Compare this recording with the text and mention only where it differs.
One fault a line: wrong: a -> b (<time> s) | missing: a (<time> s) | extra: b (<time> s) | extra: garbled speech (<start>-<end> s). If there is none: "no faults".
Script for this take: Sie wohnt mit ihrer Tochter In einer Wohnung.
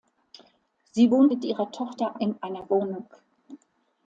no faults